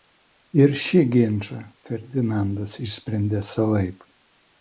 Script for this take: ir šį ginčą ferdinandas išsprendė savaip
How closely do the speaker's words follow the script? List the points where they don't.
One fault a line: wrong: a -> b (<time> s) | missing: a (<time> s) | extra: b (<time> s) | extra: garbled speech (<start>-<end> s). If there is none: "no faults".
no faults